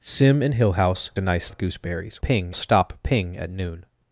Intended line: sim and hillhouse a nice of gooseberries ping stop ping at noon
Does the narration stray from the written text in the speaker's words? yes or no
no